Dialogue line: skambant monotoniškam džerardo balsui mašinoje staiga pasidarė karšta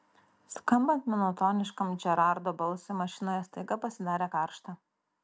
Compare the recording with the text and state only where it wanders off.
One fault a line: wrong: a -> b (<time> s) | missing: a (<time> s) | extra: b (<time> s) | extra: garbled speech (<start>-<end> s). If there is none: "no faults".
no faults